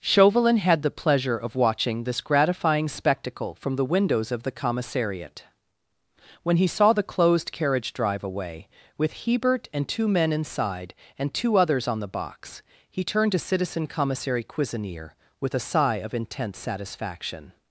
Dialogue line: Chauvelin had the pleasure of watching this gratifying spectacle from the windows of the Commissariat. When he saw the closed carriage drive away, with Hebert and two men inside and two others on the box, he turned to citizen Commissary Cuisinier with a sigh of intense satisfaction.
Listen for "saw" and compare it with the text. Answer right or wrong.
right